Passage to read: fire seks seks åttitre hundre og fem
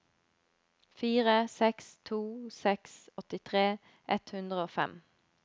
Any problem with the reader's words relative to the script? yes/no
yes